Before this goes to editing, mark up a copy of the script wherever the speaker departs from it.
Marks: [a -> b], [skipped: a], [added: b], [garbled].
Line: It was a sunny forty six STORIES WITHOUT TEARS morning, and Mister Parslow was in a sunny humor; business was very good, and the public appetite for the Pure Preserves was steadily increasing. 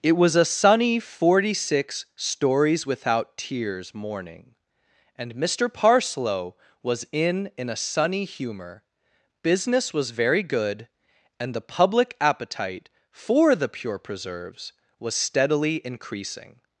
It was a sunny forty six STORIES WITHOUT TEARS morning, and Mister Parslow was in [added: in] a sunny humor; business was very good, and the public appetite for the Pure Preserves was steadily increasing.